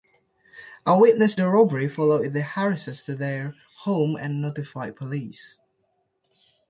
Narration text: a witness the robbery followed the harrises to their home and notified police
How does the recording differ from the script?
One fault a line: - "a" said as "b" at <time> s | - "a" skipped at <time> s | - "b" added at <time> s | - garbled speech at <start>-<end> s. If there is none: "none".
none